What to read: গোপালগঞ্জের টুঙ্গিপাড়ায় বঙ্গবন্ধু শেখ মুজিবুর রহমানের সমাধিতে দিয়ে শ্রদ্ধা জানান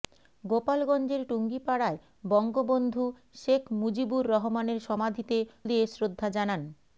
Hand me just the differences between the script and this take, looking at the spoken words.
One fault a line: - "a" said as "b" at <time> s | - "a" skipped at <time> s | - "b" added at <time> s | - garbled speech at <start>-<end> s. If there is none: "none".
none